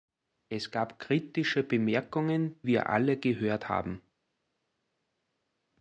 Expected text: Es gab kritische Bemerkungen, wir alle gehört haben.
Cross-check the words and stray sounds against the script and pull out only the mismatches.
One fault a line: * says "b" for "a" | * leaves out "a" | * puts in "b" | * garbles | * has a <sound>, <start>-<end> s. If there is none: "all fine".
all fine